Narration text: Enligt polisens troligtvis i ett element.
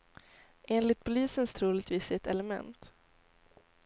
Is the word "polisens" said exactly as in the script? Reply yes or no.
yes